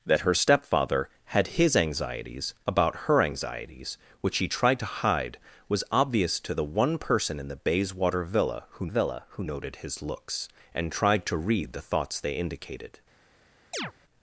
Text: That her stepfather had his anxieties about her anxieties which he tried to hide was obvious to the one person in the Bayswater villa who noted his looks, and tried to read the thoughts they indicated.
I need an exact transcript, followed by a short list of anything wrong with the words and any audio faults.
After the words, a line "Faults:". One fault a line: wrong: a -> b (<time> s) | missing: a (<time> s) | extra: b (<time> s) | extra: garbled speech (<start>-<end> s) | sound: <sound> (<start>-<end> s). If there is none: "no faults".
That her stepfather had his anxieties about her anxieties which he tried to hide was obvious to the one person in the Bayswater villa who villa who noted his looks, and tried to read the thoughts they indicated.
Faults:
extra: villa who (8.9 s)
sound: chirp (13.7-13.9 s)